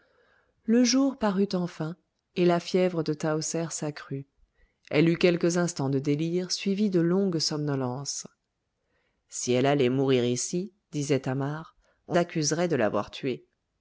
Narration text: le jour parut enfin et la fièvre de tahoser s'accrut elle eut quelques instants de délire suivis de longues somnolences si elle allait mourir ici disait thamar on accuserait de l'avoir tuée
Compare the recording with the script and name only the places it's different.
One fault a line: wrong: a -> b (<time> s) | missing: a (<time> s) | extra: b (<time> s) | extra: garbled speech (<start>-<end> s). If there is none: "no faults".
no faults